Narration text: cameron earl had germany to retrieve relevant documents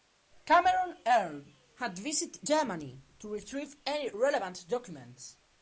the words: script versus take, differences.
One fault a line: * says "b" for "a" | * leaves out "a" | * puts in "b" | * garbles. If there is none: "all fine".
* puts in "visited"
* puts in "any"